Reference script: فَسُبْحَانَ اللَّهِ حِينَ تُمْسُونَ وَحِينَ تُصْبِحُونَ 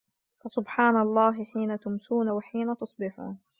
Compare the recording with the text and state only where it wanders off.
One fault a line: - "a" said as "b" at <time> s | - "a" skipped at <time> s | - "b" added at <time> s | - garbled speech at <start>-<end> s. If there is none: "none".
none